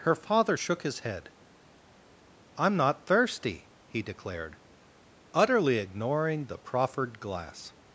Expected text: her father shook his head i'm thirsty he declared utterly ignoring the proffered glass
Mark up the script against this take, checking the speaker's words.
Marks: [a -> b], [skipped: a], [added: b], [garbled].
her father shook his head i'm [added: not] thirsty he declared utterly ignoring the proffered glass